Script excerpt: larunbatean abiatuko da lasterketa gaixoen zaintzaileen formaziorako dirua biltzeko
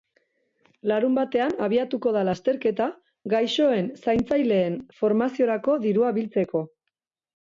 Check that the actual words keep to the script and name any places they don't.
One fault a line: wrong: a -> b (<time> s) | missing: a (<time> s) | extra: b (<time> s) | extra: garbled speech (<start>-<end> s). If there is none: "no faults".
no faults